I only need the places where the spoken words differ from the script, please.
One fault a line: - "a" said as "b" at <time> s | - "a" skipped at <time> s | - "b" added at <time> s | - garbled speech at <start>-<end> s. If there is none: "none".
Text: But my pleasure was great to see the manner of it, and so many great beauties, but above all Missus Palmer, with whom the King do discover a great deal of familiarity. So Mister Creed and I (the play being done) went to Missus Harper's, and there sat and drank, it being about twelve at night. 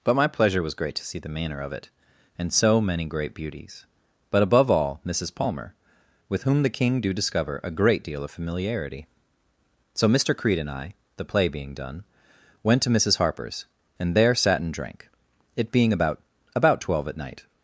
- "about" added at 16.6 s